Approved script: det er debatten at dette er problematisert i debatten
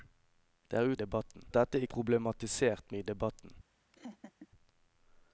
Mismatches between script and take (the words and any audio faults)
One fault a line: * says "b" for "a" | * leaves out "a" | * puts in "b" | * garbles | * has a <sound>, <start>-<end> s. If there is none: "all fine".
* has a laugh, 3.9-4.5 s